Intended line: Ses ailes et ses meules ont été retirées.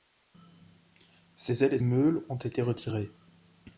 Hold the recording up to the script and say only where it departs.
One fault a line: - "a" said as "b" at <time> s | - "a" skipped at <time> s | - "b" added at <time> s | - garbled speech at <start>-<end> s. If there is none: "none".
- "ses" skipped at 1.8 s